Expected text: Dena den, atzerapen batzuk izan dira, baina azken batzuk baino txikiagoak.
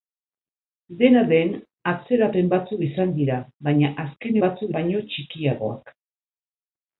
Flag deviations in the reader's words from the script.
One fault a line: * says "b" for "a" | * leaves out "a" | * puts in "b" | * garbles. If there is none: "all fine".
all fine